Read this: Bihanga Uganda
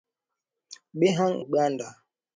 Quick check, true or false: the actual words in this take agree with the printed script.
true